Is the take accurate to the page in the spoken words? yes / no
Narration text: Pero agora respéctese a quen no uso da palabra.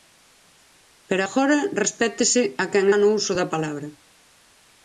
yes